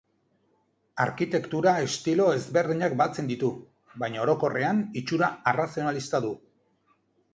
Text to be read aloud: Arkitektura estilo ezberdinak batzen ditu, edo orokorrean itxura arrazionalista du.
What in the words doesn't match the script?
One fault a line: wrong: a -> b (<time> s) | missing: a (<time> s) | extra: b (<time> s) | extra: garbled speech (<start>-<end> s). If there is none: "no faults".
wrong: edo -> baina (4.0 s)